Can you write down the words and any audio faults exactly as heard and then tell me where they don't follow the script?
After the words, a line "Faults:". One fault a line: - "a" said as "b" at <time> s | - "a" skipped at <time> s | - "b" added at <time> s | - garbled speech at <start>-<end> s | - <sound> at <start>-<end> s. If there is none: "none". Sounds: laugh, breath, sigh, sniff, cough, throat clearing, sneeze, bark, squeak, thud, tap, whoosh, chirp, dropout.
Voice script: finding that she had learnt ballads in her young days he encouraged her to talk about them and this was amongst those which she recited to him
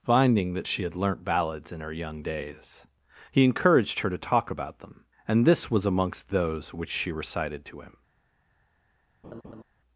finding that she had learnt ballads in her young days he encouraged her to talk about them and this was amongst those which she recited to him
Faults:
- laugh at 9.2-9.6 s